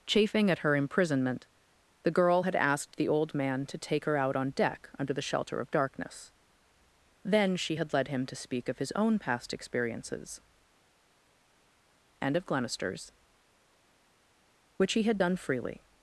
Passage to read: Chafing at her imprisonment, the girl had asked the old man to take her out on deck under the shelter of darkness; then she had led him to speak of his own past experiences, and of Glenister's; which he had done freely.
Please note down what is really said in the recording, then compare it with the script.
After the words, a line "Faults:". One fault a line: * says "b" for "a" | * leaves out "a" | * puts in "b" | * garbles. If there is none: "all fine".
Chafing at her imprisonment, the girl had asked the old man to take her out on deck under the shelter of darkness; then she had led him to speak of his own past experiences, and of Glenister's; which he had done freely.
Faults:
all fine